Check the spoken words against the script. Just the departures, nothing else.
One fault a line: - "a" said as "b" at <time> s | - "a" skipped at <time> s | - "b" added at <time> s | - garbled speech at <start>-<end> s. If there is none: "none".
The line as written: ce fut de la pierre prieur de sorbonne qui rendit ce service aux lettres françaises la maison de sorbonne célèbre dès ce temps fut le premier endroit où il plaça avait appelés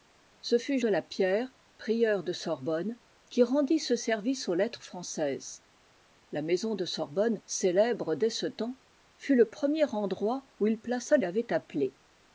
none